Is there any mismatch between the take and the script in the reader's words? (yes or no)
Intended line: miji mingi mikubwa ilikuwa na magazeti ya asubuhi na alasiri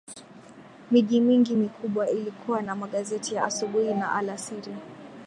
no